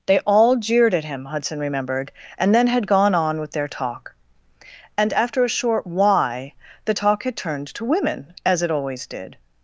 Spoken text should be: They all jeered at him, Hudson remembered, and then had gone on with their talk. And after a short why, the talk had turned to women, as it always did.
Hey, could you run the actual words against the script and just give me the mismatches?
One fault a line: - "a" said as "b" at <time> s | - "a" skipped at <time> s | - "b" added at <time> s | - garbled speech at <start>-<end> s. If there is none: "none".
none